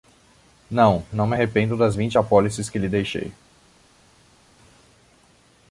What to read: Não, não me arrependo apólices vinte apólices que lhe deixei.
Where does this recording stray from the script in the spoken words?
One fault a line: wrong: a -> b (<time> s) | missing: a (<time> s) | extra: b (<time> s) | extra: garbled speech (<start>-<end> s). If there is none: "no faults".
wrong: apólices -> das (1.7 s)